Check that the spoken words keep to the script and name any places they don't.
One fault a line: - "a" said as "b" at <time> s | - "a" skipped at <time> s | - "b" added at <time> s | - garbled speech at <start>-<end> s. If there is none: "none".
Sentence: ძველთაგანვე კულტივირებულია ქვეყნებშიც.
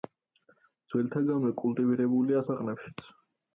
none